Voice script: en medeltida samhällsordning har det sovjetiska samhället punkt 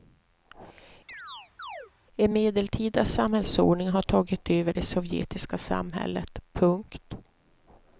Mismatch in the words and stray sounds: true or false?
true